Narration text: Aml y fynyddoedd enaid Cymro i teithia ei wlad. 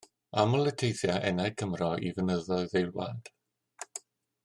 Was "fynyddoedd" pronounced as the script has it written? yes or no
no